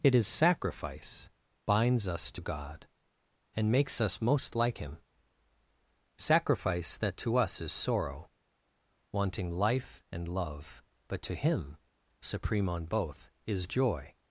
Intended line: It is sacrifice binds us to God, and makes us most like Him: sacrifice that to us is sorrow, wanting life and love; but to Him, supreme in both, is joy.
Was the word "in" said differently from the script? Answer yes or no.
yes